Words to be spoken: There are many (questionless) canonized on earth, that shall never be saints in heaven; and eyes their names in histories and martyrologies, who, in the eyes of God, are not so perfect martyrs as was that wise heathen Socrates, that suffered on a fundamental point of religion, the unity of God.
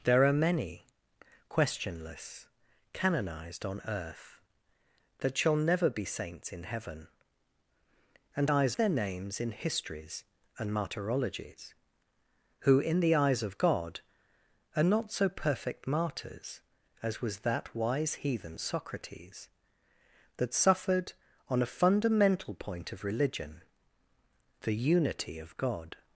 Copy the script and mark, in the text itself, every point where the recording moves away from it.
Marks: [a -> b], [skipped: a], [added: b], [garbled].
There are many (questionless) canonized on earth, that shall never be saints in heaven; and eyes their names in histories and martyrologies, who, in the eyes of God, are not so perfect martyrs as was that wise heathen Socrates, that suffered on a fundamental point of religion, the unity of God.